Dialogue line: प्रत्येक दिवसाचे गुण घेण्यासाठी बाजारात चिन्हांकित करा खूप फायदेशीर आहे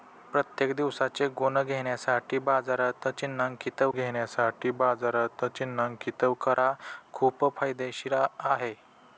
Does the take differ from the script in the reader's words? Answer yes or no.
yes